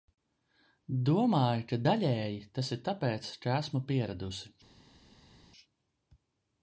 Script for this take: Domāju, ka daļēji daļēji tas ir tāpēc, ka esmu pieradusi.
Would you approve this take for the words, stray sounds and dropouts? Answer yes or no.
no